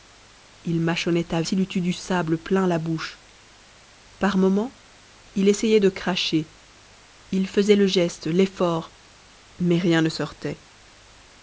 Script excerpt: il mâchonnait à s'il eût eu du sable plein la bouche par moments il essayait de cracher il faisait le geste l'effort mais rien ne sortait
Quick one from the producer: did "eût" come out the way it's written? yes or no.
yes